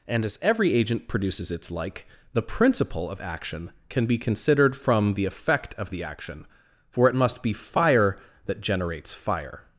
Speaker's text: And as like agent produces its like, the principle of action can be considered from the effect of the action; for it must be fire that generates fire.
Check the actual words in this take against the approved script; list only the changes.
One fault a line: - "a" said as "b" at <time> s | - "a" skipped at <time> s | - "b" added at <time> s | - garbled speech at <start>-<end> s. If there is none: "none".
- "like" said as "every" at 0.4 s